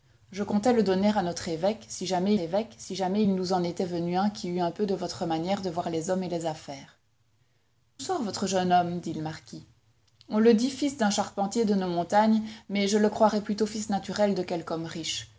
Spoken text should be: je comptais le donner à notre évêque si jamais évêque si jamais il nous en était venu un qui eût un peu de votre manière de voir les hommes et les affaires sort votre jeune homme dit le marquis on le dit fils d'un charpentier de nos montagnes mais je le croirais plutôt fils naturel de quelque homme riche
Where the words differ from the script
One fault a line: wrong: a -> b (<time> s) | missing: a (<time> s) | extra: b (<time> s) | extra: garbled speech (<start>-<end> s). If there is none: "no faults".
no faults